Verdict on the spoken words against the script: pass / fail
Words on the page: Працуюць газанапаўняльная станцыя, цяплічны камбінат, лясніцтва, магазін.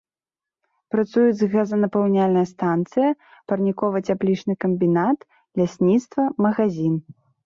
fail